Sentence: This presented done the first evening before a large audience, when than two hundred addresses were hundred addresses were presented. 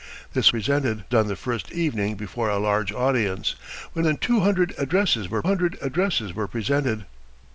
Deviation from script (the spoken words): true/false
false